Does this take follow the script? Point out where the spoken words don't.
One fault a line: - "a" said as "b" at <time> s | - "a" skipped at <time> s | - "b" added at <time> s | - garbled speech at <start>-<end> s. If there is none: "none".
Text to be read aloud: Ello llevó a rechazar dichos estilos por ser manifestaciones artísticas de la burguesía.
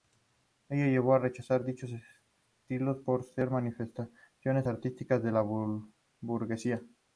none